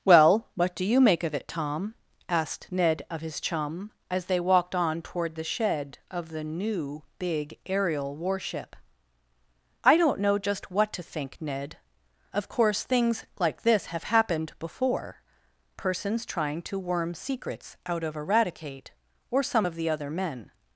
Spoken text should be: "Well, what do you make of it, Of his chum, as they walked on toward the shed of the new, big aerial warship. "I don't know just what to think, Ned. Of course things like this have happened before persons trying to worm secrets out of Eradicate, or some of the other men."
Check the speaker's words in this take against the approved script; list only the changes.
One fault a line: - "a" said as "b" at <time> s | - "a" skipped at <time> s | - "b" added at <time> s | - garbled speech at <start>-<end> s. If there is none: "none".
- "Tom asked Ned" added at 1.5 s